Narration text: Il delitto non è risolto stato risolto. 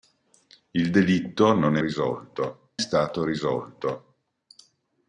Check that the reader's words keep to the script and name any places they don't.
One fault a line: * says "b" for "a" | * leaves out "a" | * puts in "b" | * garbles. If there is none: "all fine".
all fine